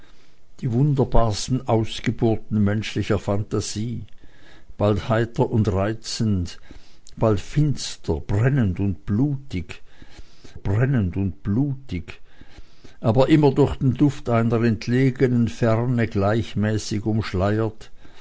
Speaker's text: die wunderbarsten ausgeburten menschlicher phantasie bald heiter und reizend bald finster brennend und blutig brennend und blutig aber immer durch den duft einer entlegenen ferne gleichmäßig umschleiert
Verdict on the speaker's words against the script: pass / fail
pass